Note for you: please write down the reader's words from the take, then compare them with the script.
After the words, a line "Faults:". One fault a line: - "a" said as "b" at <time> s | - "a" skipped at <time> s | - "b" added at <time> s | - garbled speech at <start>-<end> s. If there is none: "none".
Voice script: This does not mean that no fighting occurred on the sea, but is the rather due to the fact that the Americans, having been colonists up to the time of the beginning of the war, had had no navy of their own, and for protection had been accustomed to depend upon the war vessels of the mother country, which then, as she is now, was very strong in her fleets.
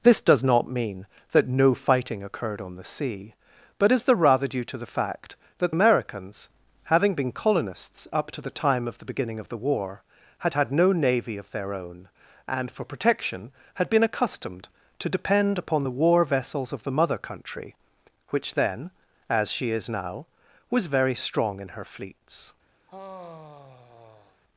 This does not mean that no fighting occurred on the sea, but is the rather due to the fact that Americans, having been colonists up to the time of the beginning of the war, had had no navy of their own, and for protection had been accustomed to depend upon the war vessels of the mother country, which then, as she is now, was very strong in her fleets.
Faults:
- "the" skipped at 5.7 s